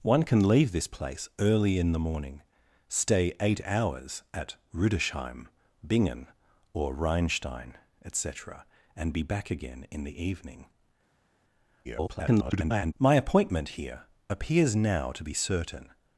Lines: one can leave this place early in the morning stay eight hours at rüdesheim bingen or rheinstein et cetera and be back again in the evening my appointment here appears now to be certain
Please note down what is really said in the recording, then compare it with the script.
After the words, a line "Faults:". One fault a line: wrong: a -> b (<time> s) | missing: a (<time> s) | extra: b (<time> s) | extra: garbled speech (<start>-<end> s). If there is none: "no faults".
one can leave this place early in the morning stay eight hours at rüdesheim bingen or rheinstein et cetera and be back again in the evening [garbled] my appointment here appears now to be certain
Faults:
extra: garbled speech (11.8-12.9 s)